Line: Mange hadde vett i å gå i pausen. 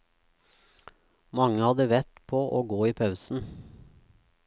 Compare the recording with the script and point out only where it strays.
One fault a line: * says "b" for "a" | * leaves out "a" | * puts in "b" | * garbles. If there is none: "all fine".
* says "på" for "i"